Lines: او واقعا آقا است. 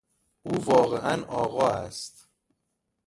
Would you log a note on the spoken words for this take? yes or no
no